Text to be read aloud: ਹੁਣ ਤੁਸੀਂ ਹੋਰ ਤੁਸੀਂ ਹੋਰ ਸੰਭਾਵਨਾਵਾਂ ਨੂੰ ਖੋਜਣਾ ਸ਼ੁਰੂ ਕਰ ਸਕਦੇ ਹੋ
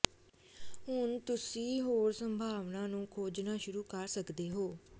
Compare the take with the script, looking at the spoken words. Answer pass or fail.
fail